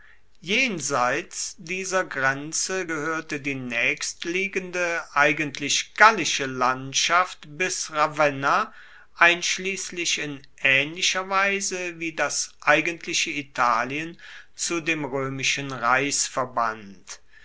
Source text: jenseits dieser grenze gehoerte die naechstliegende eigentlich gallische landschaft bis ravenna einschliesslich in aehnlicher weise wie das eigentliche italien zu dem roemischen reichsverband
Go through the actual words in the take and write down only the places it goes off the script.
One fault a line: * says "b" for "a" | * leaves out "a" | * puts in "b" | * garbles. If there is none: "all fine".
all fine